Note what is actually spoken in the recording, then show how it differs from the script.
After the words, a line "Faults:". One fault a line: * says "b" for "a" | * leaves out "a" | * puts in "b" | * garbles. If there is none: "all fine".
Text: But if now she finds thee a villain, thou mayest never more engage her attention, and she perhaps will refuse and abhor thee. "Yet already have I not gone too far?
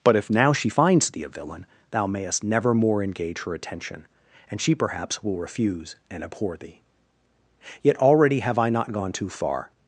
But if now she finds thee a villain, thou mayest never more engage her attention, and she perhaps will refuse and abhor thee. "Yet already have I not gone too far?
Faults:
all fine